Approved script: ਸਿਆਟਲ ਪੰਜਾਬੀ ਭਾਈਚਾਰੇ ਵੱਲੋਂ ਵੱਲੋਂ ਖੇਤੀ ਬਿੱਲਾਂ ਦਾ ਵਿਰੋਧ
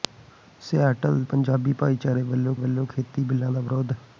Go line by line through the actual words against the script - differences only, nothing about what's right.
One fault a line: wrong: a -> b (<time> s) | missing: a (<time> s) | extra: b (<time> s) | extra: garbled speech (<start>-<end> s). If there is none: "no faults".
no faults